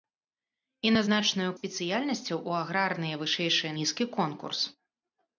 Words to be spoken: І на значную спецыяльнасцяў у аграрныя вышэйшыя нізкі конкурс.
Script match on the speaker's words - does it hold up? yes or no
yes